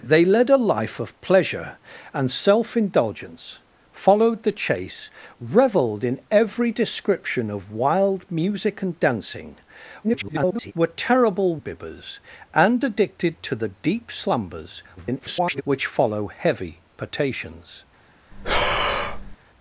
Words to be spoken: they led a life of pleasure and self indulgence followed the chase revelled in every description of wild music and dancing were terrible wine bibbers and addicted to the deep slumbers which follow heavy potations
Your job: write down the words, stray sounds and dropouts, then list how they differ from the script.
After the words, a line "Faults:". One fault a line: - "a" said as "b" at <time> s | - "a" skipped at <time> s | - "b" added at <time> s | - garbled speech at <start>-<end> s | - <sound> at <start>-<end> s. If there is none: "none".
they led a life of pleasure and self indulgence followed the chase revelled in every description of wild music and dancing [garbled] were terrible bibbers and addicted to the deep slumbers [garbled] which follow heavy potations
Faults:
- garbled speech at 10.0-10.7 s
- "wine" skipped at 11.6 s
- garbled speech at 15.0-15.6 s
- breath at 18.3-19.4 s